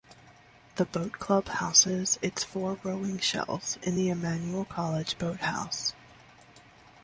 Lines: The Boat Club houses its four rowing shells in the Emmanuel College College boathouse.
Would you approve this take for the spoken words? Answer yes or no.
no